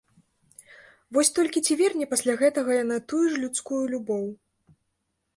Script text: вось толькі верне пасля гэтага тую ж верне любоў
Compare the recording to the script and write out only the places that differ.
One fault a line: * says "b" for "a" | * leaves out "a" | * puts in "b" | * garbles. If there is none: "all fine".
* puts in "ці"
* puts in "яна"
* says "людскую" for "верне"